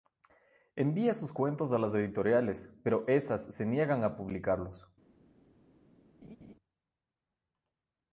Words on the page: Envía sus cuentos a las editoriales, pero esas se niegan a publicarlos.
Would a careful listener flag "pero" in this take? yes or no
no